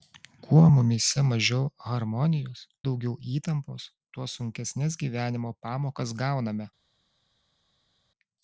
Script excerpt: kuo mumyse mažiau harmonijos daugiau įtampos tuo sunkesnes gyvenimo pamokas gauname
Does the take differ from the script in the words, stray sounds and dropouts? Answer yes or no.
no